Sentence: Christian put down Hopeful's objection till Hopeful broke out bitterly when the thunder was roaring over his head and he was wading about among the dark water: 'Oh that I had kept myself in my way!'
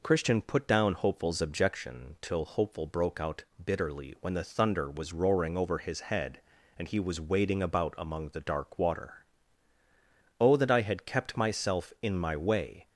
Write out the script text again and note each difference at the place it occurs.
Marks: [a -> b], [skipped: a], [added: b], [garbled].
Christian put down Hopeful's objection till Hopeful broke out bitterly when the thunder was roaring over his head and he was wading about among the dark water: 'Oh that I had kept myself in my way!'